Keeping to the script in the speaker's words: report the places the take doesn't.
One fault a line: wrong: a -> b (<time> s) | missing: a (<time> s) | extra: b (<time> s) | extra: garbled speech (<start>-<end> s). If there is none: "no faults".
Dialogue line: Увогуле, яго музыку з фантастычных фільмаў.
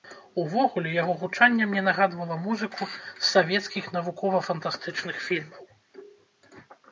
extra: гучанне мне нагадвала (1.2 s)
extra: савецкіх навукова (3.3 s)